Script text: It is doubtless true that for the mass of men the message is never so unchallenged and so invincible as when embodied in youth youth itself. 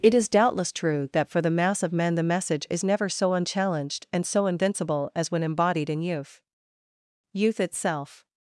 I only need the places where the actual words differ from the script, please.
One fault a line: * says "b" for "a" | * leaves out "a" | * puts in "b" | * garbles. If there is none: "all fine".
all fine